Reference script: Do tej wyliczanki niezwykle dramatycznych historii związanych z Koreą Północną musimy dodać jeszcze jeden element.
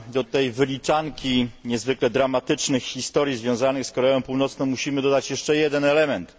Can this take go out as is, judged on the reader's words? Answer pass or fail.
pass